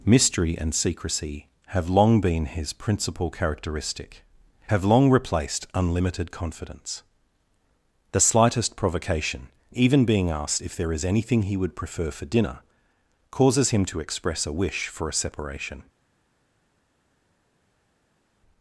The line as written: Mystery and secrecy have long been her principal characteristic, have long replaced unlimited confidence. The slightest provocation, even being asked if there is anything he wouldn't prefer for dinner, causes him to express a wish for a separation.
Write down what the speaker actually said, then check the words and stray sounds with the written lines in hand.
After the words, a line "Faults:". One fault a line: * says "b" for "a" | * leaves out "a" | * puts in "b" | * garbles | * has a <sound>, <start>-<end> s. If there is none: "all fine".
Mystery and secrecy have long been his principal characteristic, have long replaced unlimited confidence. The slightest provocation, even being asked if there is anything he would prefer for dinner, causes him to express a wish for a separation.
Faults:
* says "his" for "her"
* says "would" for "wouldn't"